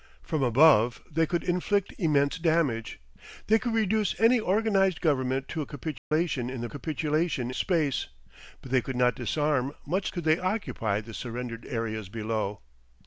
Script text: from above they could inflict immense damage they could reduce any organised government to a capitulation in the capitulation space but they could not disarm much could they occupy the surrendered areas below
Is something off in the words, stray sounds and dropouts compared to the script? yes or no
yes